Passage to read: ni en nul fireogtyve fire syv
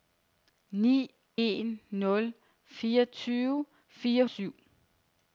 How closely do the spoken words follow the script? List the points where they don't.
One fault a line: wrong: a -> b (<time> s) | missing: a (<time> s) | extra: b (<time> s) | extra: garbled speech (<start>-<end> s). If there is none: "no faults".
no faults